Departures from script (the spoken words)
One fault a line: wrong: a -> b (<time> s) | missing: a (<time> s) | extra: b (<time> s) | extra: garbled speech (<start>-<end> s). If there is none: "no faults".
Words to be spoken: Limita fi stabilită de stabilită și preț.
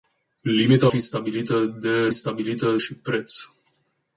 no faults